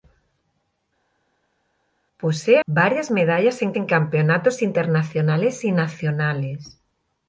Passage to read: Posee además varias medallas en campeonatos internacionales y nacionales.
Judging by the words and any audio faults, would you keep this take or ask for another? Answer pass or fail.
fail